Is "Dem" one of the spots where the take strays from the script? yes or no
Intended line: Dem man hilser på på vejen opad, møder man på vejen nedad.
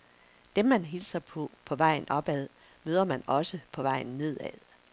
no